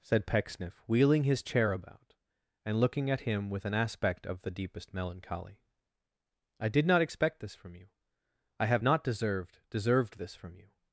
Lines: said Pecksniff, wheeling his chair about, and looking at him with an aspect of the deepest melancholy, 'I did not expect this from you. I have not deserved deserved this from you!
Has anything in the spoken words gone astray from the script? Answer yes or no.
no